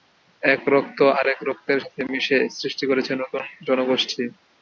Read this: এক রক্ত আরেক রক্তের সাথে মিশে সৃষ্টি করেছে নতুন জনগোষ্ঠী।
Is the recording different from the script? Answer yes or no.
no